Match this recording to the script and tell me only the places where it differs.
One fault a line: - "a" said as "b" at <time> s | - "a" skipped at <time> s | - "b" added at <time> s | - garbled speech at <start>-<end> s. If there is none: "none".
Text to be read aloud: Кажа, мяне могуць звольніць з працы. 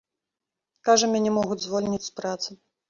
none